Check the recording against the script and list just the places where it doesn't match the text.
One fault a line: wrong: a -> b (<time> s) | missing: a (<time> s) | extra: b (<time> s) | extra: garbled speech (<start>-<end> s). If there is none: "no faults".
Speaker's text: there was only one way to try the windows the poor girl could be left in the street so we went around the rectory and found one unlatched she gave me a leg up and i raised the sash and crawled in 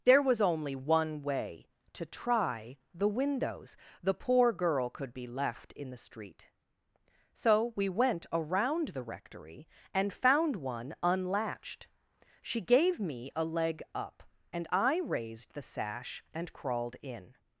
no faults